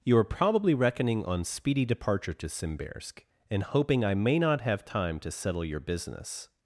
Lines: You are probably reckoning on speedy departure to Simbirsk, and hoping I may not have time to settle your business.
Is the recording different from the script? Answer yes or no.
no